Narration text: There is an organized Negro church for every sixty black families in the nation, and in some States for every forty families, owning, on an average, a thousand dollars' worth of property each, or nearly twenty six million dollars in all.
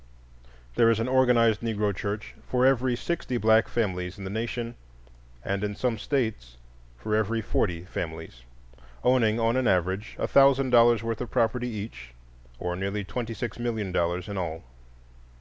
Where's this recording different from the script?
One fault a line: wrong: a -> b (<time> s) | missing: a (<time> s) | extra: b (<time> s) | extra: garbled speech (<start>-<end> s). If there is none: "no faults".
no faults